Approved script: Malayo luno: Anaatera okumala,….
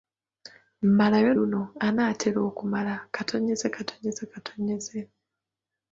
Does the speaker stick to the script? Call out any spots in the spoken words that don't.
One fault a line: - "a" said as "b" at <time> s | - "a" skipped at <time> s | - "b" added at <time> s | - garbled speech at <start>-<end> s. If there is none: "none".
none